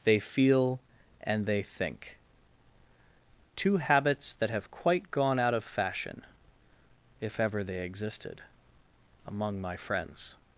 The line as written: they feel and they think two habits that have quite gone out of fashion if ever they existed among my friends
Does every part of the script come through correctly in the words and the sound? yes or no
yes